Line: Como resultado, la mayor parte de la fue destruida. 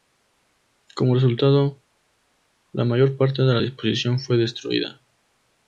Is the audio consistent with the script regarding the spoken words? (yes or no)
no